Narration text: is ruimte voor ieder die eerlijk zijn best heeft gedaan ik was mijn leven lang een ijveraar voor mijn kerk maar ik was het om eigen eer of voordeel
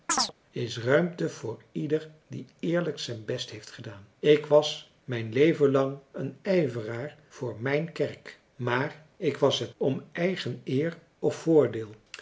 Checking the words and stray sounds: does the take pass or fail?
fail